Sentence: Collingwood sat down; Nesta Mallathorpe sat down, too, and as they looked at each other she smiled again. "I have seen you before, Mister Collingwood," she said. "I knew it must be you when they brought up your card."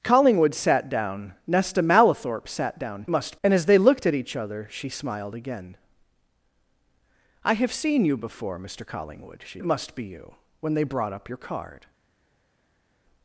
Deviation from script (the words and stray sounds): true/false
true